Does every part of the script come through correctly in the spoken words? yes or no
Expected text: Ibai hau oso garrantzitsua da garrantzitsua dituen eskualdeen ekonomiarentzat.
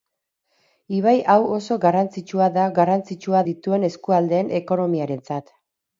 yes